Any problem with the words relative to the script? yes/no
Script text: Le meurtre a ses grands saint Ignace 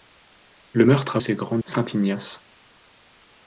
no